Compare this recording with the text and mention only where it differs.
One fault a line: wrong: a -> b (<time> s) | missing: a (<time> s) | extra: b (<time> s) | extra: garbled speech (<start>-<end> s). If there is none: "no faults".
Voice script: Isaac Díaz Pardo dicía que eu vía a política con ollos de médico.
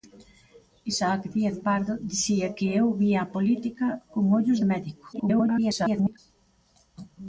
extra: garbled speech (5.1-6.2 s)